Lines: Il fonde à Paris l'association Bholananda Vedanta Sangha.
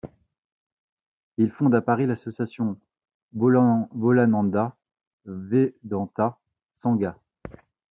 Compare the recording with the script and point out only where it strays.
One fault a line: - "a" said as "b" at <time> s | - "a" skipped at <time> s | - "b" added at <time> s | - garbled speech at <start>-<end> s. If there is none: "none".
none